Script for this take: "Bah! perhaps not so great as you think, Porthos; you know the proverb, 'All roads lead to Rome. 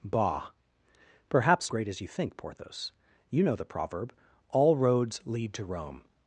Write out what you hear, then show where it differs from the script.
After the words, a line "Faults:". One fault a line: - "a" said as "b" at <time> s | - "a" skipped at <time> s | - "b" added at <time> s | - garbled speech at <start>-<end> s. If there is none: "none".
"Bah! perhaps great as you think, Porthos; you know the proverb, 'All roads lead to Rome.
Faults:
- "not so" skipped at 1.7 s